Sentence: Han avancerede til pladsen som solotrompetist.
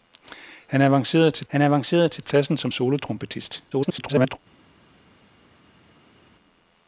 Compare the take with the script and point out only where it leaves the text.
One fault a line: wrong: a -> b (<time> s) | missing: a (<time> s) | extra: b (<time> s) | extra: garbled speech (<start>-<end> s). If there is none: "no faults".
extra: han avancerede til (1.5 s)
extra: garbled speech (3.7-4.4 s)